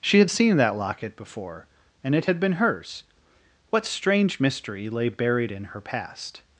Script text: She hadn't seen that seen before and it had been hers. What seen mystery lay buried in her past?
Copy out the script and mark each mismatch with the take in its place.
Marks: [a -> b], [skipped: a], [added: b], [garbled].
She [hadn't -> had] seen that [seen -> locket] before and it had been hers. What [seen -> strange] mystery lay buried in her past?